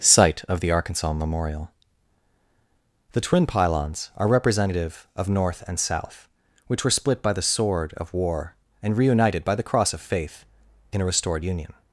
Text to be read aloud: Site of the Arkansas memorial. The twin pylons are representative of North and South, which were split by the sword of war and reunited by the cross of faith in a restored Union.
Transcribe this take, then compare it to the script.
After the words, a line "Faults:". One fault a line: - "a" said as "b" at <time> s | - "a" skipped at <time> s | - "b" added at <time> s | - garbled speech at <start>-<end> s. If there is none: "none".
Site of the Arkansas memorial. The twin pylons are representative of North and South, which were split by the sword of war and reunited by the cross of faith in a restored Union.
Faults:
none